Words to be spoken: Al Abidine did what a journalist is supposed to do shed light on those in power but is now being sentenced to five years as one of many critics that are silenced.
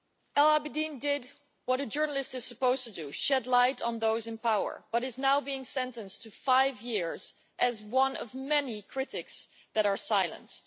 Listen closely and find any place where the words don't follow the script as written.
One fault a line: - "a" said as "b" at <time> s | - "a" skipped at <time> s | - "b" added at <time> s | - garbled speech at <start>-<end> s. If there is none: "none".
none